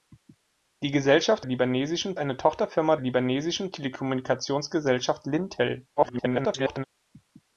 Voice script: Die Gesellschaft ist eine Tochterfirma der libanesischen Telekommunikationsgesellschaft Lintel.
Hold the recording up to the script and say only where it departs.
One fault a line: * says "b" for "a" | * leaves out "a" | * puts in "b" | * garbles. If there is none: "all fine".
* says "libanesischen" for "ist"
* leaves out "der"
* garbles